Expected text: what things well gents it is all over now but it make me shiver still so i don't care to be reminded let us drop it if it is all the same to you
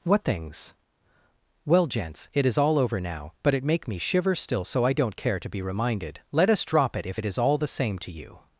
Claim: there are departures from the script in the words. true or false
false